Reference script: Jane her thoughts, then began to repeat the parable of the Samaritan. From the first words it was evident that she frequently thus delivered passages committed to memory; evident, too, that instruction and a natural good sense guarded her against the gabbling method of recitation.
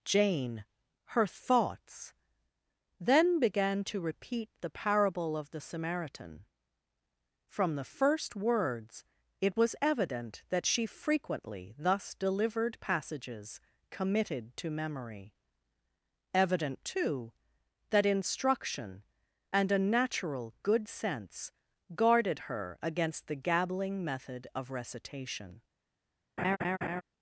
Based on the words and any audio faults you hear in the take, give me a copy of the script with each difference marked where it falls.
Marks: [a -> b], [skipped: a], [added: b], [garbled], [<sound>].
Jane her thoughts, then began to repeat the parable of the Samaritan. From the first words it was evident that she frequently thus delivered passages committed to memory; evident, too, that instruction and a natural good sense guarded her against the gabbling method of recitation. [laugh]